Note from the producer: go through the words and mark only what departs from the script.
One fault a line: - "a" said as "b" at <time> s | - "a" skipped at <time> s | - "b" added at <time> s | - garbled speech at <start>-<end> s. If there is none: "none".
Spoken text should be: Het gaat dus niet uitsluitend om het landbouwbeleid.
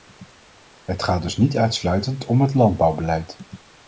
none